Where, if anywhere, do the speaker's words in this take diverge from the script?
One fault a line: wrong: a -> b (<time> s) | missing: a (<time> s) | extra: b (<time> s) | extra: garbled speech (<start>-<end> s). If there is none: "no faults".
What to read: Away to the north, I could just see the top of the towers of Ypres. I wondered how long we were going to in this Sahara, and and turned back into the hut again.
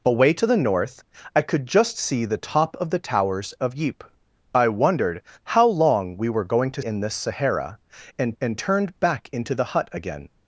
no faults